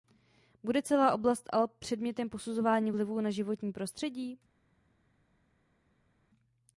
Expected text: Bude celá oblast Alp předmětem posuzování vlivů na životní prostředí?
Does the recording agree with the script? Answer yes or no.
yes